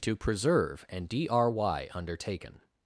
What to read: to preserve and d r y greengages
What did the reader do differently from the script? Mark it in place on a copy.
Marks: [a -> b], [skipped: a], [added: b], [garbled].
to preserve and d r y [greengages -> undertaken]